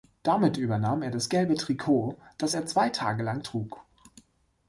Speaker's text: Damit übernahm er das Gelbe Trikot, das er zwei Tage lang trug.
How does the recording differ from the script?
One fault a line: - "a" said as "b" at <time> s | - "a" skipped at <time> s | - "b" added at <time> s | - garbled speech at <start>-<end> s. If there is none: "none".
none